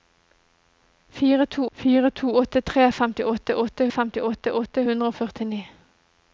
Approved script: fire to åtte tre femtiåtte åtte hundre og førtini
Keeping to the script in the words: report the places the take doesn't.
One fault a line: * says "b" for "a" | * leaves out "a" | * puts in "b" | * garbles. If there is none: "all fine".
* puts in "fire to"
* puts in "femtiåtte åtte"